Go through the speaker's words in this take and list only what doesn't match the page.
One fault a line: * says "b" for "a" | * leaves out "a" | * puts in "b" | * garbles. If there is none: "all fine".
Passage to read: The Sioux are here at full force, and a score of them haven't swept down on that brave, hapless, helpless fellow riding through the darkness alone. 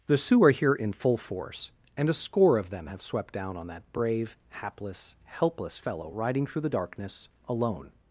* says "in" for "at"
* says "have" for "haven't"